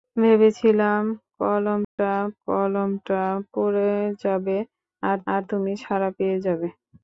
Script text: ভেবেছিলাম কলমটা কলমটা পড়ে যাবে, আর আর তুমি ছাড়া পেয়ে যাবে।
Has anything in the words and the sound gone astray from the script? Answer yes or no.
yes